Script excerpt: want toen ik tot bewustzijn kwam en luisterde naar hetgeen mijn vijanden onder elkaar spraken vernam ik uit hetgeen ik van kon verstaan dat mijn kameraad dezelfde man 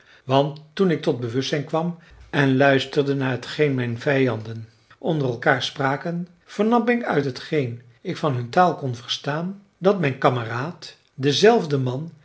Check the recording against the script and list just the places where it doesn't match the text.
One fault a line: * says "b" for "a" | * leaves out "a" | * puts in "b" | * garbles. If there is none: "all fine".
* puts in "hun taal"